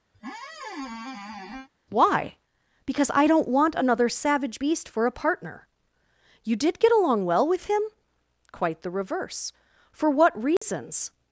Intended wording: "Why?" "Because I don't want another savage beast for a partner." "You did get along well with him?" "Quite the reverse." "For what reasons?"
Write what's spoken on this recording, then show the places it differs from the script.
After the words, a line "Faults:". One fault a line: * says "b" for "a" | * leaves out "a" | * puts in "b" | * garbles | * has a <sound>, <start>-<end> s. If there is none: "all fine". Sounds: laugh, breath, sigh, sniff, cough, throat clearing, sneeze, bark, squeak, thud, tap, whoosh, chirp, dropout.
"Why?" "Because I don't want another savage beast for a partner." "You did get along well with him?" "Quite the reverse." "For what reasons?"
Faults:
* has a squeak, 0.1-1.7 s
* has a dropout, 10.6-10.6 s